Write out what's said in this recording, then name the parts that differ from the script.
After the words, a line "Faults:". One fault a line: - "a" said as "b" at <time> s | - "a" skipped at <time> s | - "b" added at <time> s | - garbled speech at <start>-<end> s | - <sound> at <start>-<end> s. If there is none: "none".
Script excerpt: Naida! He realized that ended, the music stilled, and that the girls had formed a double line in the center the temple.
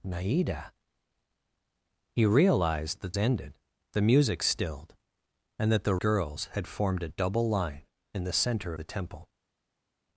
Naida! He realized that ended, the music stilled, and that the girls had formed a double line in the center the temple.
Faults:
none